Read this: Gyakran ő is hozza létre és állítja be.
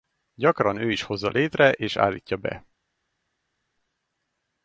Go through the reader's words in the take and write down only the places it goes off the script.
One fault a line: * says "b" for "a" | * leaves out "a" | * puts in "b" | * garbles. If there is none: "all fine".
all fine